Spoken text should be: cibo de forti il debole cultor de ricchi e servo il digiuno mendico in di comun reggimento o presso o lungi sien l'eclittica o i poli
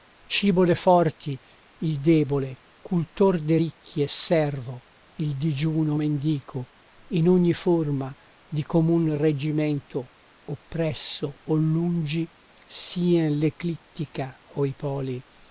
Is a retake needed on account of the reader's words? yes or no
yes